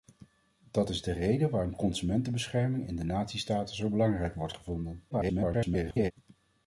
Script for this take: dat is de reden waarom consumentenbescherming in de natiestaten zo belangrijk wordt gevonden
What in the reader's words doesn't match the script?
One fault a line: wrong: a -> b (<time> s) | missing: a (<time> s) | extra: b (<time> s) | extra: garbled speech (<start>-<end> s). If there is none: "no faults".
extra: garbled speech (5.1-6.1 s)